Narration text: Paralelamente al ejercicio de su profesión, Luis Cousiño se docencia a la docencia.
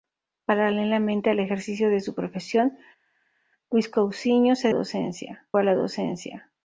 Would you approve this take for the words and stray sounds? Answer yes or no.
yes